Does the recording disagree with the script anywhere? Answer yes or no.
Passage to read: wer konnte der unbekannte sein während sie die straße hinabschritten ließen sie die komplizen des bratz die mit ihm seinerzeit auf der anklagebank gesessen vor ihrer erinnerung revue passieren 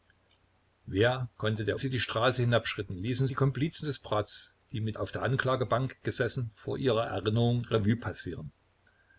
yes